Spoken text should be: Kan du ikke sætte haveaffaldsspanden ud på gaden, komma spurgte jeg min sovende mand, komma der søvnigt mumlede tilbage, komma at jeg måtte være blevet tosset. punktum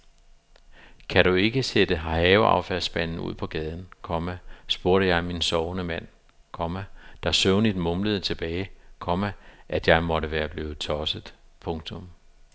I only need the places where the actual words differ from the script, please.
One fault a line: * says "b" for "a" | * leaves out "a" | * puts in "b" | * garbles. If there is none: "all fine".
all fine